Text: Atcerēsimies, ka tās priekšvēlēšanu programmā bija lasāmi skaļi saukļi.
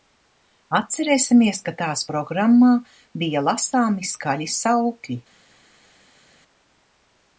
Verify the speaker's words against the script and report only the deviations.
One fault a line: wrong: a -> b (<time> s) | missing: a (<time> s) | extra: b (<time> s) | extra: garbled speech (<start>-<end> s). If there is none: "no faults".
missing: priekšvēlēšanu (2.0 s)